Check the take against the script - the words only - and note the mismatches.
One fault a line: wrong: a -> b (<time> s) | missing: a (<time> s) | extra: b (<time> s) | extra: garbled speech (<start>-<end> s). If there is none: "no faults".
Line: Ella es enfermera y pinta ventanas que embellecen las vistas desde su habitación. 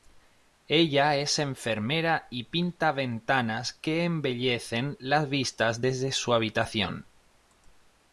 no faults